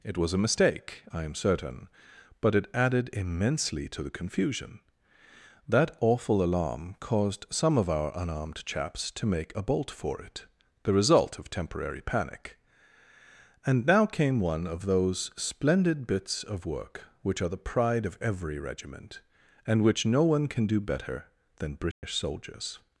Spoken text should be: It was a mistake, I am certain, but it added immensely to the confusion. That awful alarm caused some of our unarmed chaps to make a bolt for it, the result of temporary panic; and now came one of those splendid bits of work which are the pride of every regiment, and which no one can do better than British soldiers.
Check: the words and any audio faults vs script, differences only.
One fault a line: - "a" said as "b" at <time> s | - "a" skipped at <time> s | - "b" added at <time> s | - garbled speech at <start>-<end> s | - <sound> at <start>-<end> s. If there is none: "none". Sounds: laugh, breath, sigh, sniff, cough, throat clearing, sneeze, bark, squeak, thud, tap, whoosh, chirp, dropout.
- dropout at 21.9-22.0 s